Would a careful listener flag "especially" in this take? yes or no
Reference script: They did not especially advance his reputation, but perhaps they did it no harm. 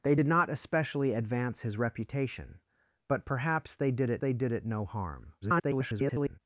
no